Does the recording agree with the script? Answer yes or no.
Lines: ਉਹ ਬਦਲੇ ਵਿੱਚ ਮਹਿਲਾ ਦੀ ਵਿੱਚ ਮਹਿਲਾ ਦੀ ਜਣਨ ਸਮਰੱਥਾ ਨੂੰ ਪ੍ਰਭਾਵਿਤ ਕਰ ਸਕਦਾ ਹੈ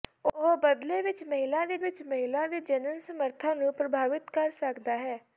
yes